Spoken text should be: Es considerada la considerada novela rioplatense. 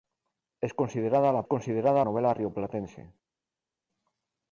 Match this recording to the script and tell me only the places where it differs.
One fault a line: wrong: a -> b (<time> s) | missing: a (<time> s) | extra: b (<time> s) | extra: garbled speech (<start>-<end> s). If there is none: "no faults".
no faults